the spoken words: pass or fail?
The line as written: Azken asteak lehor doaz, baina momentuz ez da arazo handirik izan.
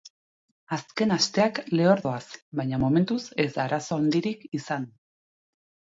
pass